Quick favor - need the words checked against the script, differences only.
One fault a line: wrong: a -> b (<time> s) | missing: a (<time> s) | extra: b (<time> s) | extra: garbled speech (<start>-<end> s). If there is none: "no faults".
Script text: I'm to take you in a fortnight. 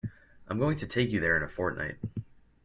extra: going (0.6 s)
extra: there (1.2 s)